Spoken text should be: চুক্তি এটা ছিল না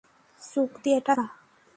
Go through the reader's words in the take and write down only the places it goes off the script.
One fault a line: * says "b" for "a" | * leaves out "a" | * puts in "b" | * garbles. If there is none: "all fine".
* leaves out "ছিল"